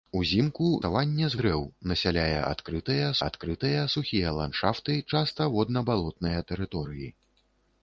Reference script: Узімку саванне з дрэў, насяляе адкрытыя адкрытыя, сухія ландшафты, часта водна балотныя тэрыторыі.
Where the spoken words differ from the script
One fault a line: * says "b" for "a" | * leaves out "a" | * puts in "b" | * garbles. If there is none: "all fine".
all fine